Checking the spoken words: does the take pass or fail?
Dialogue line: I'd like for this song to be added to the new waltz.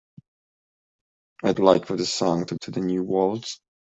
fail